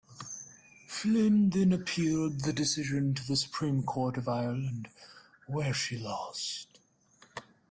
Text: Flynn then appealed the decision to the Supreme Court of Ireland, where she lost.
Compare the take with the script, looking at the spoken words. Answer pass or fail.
pass